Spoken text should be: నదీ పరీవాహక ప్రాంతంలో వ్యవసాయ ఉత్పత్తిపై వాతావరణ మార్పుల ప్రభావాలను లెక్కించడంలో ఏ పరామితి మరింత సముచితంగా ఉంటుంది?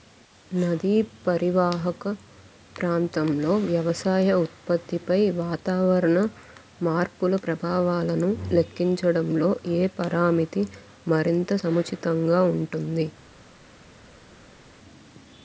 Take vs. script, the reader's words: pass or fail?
pass